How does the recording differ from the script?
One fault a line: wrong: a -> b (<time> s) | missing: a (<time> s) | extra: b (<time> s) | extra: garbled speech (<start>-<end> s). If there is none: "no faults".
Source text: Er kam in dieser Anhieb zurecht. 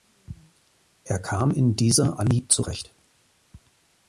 no faults